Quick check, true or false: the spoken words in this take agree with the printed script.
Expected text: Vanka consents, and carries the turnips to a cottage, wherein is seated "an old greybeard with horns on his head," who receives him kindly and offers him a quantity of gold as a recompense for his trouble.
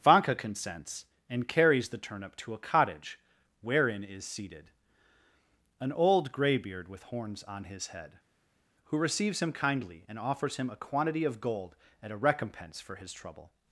false